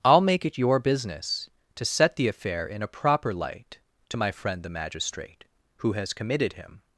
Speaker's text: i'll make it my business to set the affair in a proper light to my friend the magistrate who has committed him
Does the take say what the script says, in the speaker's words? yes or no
no